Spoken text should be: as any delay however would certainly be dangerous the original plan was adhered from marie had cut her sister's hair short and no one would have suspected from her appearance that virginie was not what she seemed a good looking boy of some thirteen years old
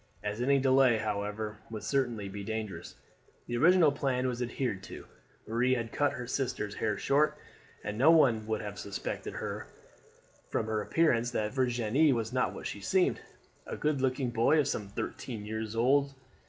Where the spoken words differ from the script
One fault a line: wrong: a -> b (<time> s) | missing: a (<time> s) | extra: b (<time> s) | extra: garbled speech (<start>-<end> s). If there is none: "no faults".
wrong: from -> to (4.8 s)